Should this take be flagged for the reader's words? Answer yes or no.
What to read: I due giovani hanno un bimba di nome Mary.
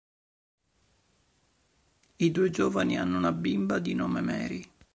yes